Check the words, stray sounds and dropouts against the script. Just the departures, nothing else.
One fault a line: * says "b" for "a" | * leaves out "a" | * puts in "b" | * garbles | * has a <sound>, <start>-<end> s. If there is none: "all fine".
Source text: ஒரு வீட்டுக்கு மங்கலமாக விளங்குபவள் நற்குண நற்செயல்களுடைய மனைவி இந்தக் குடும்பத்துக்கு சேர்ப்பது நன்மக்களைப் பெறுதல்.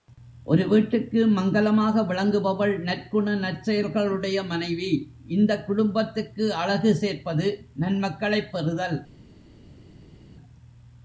* puts in "அழகு"